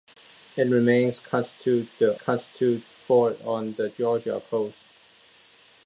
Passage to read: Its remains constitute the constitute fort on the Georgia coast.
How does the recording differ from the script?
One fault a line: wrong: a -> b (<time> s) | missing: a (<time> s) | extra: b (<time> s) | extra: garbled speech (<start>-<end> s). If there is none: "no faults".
no faults